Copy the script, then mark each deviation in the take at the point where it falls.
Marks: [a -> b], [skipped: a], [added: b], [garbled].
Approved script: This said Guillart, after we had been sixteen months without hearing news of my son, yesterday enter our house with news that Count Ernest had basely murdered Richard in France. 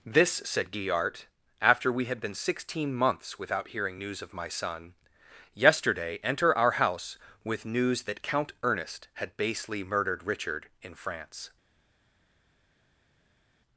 This said Guillart, after we had been sixteen months without hearing news of my son, yesterday enter our house with news that Count Ernest had basely murdered Richard in France.